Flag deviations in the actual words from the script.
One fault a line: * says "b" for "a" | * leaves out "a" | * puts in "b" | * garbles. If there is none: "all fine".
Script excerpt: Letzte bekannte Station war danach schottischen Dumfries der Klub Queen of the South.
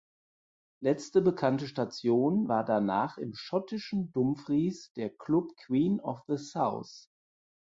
* puts in "im"